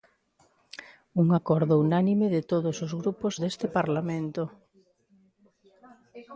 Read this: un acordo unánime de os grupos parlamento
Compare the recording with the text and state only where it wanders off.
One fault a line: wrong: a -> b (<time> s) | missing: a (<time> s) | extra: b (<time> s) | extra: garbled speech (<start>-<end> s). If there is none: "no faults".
extra: todos (2.5 s)
extra: deste (3.4 s)